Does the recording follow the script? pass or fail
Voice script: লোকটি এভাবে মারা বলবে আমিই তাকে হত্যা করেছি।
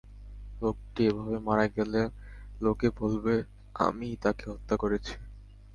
fail